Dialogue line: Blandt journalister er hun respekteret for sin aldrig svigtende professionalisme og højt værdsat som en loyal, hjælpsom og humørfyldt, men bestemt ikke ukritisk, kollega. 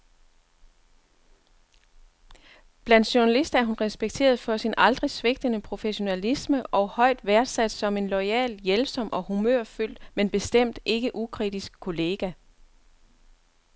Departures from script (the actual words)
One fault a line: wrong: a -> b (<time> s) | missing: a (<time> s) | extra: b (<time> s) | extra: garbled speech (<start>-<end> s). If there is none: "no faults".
no faults